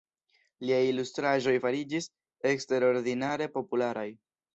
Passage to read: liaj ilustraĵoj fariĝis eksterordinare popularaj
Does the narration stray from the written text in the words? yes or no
no